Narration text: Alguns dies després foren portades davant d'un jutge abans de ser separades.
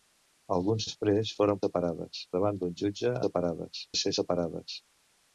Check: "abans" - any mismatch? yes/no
yes